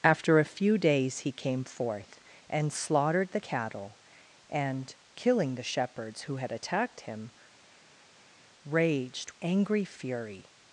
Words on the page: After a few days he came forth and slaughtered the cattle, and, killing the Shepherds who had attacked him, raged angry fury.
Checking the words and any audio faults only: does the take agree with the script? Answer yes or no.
yes